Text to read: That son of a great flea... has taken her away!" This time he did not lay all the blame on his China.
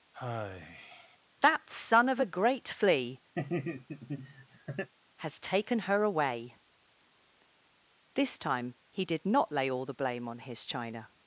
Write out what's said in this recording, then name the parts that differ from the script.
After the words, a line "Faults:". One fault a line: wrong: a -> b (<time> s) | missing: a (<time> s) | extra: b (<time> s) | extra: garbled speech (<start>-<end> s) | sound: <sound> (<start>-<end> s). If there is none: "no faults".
That son of a great flea... has taken her away!" This time he did not lay all the blame on his China.
Faults:
sound: sigh (0.1-1.2 s)
sound: laugh (3.4-4.9 s)